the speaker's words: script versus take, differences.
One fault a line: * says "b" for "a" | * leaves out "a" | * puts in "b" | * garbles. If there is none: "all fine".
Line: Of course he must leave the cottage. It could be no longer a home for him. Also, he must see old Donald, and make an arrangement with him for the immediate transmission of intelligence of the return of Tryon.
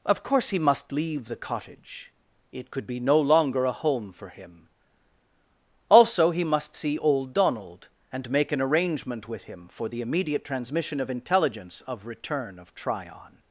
* leaves out "the"